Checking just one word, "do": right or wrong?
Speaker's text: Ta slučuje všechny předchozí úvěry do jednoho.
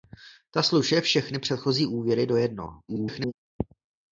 right